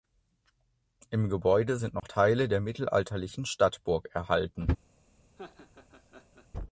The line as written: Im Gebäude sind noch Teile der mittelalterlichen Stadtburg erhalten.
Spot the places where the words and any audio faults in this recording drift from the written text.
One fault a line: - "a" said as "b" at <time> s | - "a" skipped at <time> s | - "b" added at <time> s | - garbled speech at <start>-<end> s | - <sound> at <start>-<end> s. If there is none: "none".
- dropout at 2.0-2.0 s
- laugh at 5.4-6.5 s